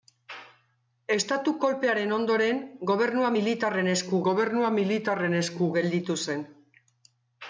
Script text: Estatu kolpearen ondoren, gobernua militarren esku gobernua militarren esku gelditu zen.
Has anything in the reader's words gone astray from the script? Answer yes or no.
no